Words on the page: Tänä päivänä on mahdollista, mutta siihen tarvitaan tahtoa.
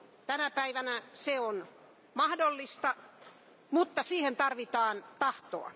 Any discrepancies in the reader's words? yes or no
yes